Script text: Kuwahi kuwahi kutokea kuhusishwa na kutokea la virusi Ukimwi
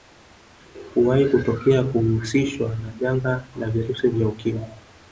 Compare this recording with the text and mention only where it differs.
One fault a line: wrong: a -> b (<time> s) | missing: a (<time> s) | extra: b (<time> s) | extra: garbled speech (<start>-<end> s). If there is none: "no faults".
missing: kuwahi (1.2 s)
wrong: kutokea -> janga (3.0 s)
extra: vya (4.1 s)